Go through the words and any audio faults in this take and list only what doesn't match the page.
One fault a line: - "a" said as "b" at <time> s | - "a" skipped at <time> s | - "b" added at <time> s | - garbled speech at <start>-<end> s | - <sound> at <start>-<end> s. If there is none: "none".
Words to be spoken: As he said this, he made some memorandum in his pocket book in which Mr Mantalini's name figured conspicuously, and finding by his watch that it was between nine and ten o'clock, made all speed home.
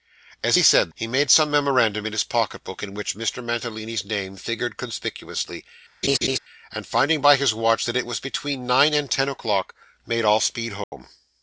- "this" skipped at 0.9 s
- laugh at 6.0-6.4 s
- dropout at 10.8-10.9 s